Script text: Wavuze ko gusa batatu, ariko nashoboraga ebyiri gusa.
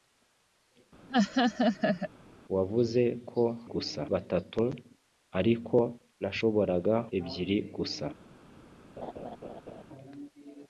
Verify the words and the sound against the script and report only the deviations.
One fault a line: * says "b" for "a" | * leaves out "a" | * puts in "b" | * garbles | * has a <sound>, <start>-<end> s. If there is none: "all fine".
* has a laugh, 1.1-2.1 s
* has a laugh, 9.0-9.8 s